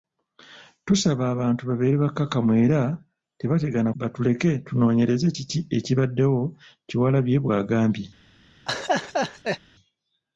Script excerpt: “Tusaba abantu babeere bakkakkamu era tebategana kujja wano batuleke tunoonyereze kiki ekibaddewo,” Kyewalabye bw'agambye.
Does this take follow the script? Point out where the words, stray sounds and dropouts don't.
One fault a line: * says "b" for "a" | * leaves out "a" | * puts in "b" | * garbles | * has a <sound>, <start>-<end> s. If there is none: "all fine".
* leaves out "kujja wano"
* has a laugh, 8.7-9.6 s